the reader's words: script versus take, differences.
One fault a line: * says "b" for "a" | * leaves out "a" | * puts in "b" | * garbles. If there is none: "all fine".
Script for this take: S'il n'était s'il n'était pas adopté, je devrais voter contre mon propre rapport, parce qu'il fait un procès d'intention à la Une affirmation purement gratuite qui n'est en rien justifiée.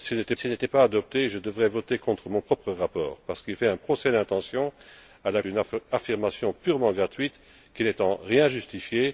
all fine